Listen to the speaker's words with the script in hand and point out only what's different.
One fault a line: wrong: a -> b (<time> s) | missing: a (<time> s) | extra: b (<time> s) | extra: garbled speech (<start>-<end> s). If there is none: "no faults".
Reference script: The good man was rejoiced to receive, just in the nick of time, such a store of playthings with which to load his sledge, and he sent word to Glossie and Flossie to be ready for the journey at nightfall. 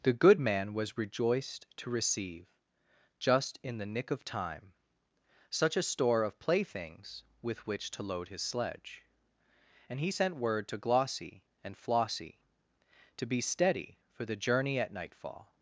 wrong: ready -> steady (13.4 s)